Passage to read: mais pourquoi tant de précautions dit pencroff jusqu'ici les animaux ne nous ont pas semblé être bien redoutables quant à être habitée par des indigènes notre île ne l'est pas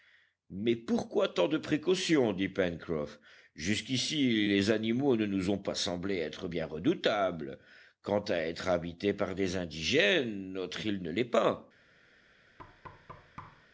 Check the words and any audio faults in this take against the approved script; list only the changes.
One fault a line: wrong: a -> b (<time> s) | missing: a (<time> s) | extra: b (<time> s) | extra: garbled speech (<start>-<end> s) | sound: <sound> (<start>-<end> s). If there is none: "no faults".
sound: thud (12.6-13.7 s)